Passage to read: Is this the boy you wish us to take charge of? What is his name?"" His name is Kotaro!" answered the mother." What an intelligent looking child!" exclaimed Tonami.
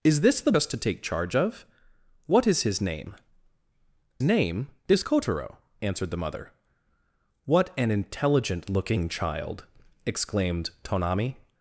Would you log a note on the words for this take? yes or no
yes